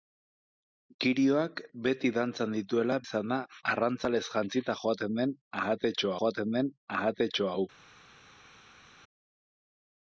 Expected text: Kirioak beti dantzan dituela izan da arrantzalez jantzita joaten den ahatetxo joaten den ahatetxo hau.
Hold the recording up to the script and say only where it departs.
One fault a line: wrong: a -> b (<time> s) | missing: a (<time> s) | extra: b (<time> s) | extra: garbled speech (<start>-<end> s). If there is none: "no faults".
no faults